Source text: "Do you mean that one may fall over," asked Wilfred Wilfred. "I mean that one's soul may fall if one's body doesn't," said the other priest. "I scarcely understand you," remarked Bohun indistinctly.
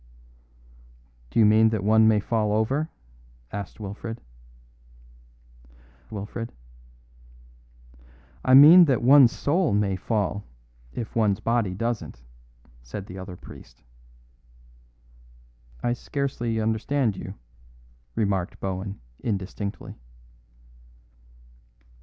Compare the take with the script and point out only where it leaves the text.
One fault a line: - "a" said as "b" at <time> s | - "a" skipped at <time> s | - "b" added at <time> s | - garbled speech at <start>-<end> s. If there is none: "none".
none